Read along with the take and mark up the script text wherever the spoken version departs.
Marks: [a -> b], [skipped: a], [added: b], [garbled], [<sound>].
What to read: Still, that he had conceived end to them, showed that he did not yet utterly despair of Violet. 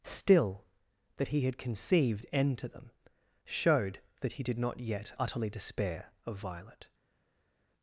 Still, that he had conceived end to them, showed that he did not yet utterly despair of Violet.